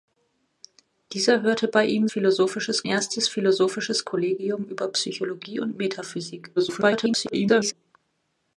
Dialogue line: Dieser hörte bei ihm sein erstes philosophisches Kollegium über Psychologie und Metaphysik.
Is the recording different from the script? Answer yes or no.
yes